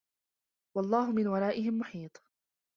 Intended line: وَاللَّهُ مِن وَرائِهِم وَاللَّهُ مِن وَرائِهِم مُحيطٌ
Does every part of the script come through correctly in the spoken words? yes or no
no